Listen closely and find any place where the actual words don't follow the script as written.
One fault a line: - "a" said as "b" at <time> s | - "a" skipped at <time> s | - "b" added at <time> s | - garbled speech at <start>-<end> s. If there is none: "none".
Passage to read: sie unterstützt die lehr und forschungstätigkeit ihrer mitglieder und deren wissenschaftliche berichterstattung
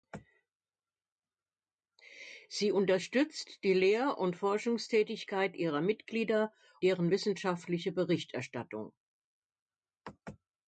- "und" skipped at 6.5 s